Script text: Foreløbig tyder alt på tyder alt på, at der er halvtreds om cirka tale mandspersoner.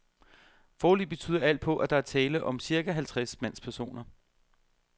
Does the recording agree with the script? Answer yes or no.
no